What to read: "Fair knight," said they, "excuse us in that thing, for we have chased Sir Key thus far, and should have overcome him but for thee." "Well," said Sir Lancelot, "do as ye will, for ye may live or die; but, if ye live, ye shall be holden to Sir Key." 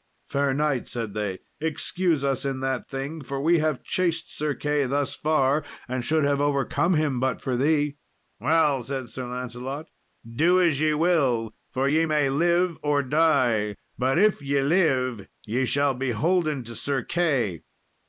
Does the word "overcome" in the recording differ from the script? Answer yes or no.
no